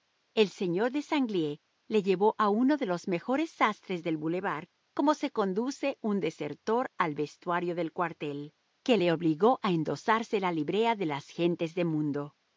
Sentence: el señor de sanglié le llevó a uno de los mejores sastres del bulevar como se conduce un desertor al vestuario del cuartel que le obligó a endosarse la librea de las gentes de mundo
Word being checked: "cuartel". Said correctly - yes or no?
yes